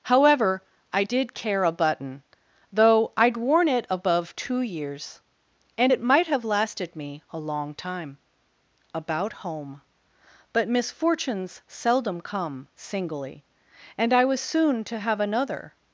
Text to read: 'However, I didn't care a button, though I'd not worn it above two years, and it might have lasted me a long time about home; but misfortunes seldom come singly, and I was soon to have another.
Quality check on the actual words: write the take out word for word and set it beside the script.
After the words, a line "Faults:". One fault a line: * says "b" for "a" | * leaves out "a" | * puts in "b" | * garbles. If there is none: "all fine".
'However, I did care a button, though I'd worn it above two years, and it might have lasted me a long time about home; but misfortunes seldom come singly, and I was soon to have another.
Faults:
* says "did" for "didn't"
* leaves out "not"